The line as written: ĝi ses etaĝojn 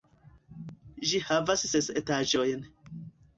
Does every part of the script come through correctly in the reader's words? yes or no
no